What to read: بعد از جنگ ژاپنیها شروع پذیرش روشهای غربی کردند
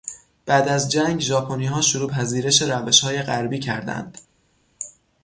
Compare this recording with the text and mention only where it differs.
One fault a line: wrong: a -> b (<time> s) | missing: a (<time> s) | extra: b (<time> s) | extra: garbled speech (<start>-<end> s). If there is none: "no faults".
no faults